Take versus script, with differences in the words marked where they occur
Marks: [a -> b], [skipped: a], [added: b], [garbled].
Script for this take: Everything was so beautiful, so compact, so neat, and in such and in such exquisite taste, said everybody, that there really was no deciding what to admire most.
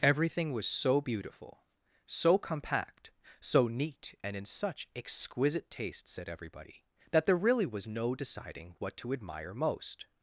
Everything was so beautiful, so compact, so neat, and in such [skipped: and in such] exquisite taste, said everybody, that there really was no deciding what to admire most.